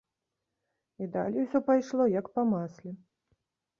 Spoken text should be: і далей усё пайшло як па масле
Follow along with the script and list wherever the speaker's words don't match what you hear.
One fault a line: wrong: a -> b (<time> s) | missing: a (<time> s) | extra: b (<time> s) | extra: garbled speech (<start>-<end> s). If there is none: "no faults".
no faults